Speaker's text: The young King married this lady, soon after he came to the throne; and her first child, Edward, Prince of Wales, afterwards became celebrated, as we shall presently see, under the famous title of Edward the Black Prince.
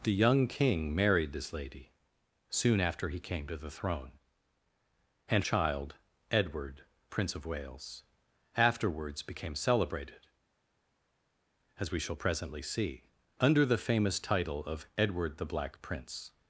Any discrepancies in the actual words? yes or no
yes